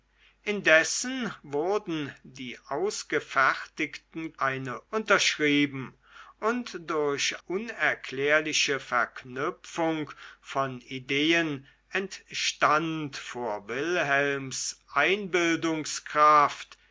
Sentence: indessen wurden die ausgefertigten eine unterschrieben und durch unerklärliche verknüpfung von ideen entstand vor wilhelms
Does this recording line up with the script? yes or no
yes